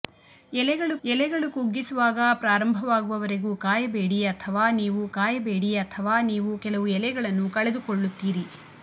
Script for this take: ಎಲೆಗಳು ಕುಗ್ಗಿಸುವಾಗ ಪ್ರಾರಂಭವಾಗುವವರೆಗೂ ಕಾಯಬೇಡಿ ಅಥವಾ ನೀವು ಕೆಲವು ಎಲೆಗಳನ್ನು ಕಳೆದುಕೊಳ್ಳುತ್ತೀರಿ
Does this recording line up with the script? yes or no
no